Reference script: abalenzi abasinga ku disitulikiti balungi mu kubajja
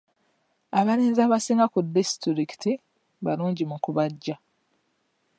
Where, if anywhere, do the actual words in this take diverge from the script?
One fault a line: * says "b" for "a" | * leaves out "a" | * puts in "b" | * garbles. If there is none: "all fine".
all fine